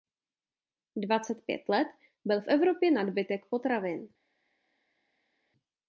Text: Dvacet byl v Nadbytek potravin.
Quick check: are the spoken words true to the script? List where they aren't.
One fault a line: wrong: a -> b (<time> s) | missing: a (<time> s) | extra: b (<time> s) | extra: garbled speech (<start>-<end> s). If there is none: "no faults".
extra: pět let (1.4 s)
extra: Evropě (2.5 s)